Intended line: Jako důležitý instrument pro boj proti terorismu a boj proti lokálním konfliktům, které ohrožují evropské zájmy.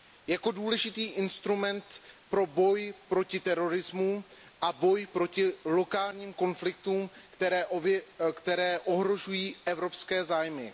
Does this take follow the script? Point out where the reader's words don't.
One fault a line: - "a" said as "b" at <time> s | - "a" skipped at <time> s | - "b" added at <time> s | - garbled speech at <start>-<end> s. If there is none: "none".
none